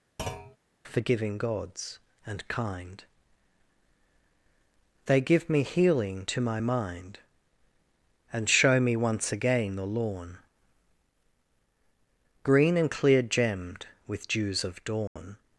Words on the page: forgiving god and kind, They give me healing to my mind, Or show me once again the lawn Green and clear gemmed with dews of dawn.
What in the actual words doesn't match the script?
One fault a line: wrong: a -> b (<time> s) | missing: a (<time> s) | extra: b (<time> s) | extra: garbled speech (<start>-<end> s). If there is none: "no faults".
wrong: god -> gods (1.4 s)
wrong: Or -> And (8.3 s)